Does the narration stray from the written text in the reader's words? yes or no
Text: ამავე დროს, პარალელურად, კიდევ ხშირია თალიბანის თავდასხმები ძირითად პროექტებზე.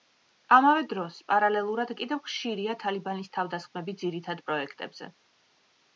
no